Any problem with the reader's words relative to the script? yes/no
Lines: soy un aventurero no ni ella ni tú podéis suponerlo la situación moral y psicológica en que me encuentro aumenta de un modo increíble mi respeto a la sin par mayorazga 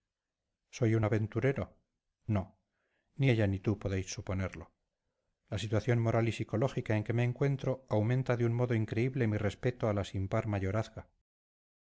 no